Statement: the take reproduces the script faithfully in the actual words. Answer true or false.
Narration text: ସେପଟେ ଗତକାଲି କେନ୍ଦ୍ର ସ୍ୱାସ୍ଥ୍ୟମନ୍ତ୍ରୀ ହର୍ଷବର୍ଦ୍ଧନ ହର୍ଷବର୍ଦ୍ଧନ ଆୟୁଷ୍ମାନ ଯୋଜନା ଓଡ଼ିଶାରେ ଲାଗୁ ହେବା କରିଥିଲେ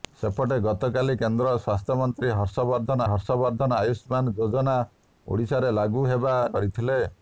true